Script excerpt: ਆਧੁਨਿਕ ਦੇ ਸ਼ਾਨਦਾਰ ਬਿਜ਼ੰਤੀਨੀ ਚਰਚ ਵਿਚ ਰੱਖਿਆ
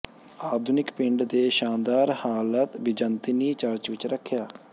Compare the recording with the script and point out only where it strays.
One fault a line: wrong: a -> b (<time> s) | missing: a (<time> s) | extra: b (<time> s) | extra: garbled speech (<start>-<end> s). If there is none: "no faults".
extra: ਪਿੰਡ (0.9 s)
extra: ਹਾਲਤ (2.2 s)